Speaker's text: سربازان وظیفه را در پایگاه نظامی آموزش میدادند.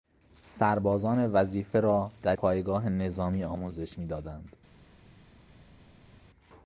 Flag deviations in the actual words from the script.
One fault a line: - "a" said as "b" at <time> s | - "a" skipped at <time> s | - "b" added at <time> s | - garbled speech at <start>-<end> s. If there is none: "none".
none